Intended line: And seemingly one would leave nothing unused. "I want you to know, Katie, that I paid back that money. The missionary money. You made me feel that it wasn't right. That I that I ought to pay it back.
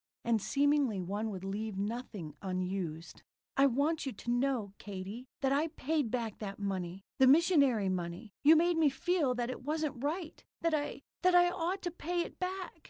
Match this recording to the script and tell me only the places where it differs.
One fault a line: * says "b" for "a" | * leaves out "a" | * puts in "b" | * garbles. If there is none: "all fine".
all fine